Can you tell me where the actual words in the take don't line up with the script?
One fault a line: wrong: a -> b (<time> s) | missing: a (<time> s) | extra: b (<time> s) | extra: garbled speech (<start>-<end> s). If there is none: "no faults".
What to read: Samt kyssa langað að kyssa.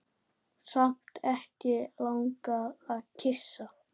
wrong: kyssa -> ekki (1.3 s)